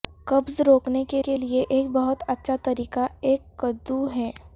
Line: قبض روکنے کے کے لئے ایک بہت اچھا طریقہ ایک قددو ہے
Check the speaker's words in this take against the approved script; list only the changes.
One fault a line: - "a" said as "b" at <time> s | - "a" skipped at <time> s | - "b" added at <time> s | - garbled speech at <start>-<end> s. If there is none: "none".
none